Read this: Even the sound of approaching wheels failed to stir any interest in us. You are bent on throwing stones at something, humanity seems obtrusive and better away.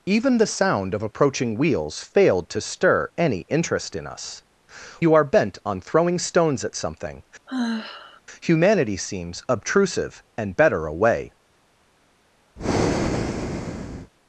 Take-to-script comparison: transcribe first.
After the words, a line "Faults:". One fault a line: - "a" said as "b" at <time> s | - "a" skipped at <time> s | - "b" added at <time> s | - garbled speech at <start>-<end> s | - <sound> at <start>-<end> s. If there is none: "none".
Even the sound of approaching wheels failed to stir any interest in us. You are bent on throwing stones at something, humanity seems obtrusive and better away.
Faults:
- sigh at 7.5-8.2 s
- breath at 12.6-14.1 s